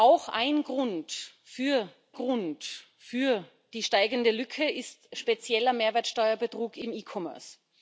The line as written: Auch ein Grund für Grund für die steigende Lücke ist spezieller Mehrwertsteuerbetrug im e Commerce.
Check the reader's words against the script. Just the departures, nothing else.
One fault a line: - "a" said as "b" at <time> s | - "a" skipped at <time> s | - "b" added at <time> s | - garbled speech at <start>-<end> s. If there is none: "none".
none